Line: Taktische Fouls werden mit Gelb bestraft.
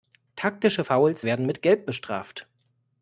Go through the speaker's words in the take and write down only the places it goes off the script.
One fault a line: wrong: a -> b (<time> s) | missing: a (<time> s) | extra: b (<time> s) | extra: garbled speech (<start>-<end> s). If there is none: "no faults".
no faults